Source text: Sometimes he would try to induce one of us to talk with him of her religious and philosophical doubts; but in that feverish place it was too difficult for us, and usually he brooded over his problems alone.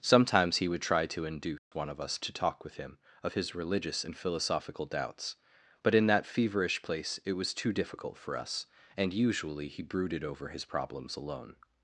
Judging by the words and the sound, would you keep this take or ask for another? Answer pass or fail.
fail